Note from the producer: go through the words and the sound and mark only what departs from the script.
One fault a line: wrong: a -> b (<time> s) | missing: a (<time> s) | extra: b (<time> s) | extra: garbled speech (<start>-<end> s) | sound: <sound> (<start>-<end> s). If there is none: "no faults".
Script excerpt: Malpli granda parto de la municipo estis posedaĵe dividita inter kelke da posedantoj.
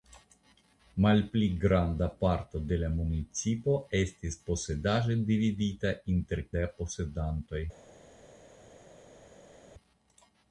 missing: kelke (6.4 s)